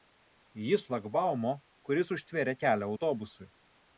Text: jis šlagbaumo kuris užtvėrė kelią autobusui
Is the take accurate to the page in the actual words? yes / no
yes